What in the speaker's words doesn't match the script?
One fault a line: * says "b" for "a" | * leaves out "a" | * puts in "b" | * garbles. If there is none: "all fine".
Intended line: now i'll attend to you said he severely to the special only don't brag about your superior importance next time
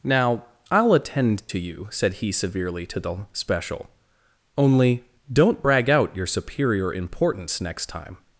* says "out" for "about"